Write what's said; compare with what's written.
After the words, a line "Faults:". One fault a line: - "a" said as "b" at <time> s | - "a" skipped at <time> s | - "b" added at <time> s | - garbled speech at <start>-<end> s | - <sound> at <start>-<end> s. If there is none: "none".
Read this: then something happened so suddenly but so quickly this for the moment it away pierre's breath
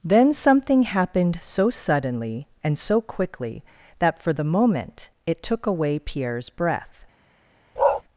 then something happened so suddenly and so quickly that for the moment it took away pierre's breath
Faults:
- "but" said as "and" at 2.6 s
- "this" said as "that" at 4.0 s
- "took" added at 5.4 s
- bark at 7.8-8.0 s